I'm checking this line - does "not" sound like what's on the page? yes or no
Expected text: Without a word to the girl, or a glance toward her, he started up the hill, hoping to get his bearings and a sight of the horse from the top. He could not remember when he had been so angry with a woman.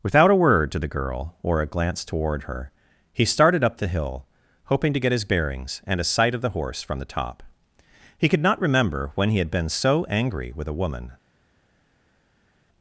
yes